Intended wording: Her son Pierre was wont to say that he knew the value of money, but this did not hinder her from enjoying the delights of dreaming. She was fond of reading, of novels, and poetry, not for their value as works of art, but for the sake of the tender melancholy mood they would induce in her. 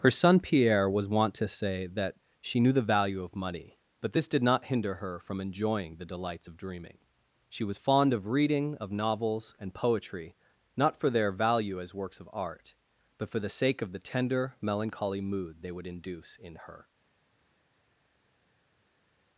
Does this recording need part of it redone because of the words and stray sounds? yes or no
yes